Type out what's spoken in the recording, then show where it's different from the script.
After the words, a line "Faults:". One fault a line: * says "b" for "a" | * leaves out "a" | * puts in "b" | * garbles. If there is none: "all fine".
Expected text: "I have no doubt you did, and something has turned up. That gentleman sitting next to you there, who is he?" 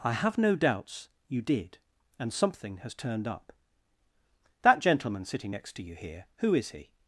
"I have no doubts you did, and something has turned up. That gentleman sitting next to you here, who is he?"
Faults:
* says "doubts" for "doubt"
* says "here" for "there"